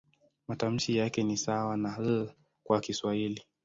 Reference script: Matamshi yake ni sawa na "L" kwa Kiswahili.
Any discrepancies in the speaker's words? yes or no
no